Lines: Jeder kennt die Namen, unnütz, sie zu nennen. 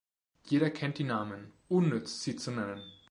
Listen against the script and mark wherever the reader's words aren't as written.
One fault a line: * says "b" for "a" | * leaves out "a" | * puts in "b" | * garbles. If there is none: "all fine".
all fine